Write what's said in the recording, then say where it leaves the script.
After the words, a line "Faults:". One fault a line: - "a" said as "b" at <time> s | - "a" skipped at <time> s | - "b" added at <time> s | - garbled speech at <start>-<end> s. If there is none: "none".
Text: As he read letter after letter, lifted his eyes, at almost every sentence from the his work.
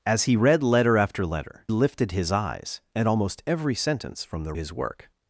As he read letter after letter, lifted his eyes, at almost every sentence from the his work.
Faults:
none